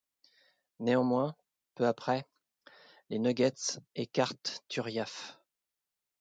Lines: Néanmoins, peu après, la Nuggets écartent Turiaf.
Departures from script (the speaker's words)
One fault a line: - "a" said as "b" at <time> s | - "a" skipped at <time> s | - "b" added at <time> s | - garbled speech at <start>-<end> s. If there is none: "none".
- "la" said as "les" at 3.1 s